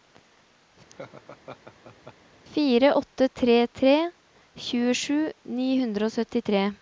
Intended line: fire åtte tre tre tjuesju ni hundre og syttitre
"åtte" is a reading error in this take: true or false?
false